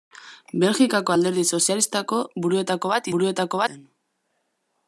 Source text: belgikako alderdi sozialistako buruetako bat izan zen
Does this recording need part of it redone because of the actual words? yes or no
yes